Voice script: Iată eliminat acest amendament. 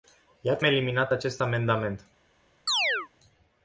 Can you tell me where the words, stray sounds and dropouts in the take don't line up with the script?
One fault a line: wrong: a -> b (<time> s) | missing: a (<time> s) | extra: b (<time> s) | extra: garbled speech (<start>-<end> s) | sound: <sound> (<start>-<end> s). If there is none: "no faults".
sound: chirp (2.7-3.1 s)